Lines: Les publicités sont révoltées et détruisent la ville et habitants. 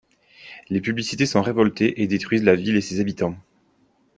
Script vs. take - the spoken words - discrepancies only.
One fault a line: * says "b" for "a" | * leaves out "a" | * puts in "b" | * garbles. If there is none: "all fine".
* puts in "ses"